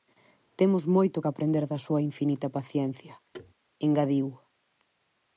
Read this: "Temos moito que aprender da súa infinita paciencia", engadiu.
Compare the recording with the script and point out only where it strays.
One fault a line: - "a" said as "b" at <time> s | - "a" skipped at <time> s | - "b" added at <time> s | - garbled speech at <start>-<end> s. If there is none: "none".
none